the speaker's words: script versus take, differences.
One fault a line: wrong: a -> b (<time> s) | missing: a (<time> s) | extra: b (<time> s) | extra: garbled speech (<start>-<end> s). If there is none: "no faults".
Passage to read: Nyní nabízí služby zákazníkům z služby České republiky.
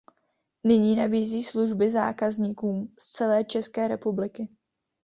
wrong: služby -> celé (3.1 s)